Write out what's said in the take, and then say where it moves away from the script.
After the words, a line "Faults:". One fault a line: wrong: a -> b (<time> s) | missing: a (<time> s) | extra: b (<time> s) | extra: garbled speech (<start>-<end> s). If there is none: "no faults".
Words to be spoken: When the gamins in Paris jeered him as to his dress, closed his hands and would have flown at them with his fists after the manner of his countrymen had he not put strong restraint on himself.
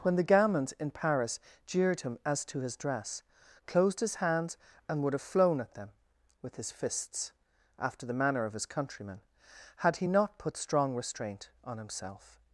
When the gamins in Paris jeered him as to his dress, closed his hands and would have flown at them with his fists after the manner of his countrymen had he not put strong restraint on himself.
Faults:
no faults